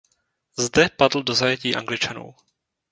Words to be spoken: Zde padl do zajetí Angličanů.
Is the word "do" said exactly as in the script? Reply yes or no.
yes